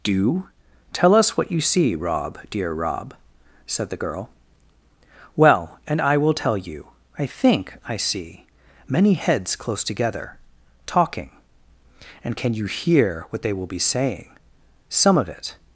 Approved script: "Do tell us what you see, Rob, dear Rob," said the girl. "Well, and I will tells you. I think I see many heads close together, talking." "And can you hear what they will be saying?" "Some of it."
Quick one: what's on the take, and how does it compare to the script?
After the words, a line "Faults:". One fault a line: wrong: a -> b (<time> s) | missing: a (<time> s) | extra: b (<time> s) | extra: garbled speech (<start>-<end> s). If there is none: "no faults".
"Do tell us what you see, Rob, dear Rob," said the girl. "Well, and I will tell you. I think I see many heads close together, talking." "And can you hear what they will be saying?" "Some of it."
Faults:
wrong: tells -> tell (6.3 s)